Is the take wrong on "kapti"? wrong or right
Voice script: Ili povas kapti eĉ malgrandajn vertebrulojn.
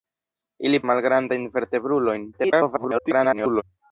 wrong